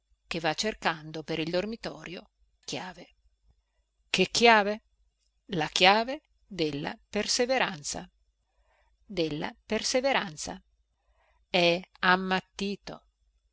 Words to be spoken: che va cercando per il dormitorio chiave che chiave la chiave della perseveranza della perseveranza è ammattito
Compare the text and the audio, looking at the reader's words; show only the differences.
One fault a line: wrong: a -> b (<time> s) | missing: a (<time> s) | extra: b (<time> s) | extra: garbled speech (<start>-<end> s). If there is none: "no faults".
no faults